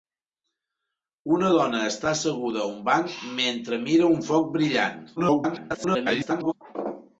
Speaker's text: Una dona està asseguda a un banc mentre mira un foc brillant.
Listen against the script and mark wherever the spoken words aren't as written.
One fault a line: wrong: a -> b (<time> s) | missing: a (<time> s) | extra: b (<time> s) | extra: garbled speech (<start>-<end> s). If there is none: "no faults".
extra: garbled speech (5.2-6.5 s)